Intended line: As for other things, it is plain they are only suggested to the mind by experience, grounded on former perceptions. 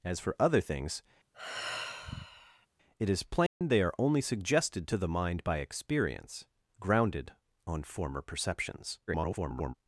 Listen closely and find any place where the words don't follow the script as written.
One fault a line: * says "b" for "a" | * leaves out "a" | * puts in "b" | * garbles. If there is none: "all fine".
* garbles